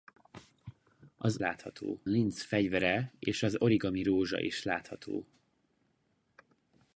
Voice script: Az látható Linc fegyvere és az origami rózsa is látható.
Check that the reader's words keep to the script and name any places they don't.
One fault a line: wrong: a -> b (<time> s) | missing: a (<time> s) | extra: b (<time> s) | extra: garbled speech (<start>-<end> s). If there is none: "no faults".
no faults